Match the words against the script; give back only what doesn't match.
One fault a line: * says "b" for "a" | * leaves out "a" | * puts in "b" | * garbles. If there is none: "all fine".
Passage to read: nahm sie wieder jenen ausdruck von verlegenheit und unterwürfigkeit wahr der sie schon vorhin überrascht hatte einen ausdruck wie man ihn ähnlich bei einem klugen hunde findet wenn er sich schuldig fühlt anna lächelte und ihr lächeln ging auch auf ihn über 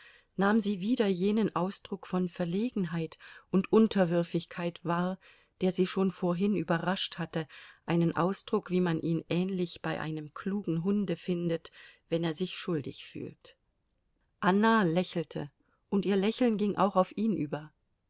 all fine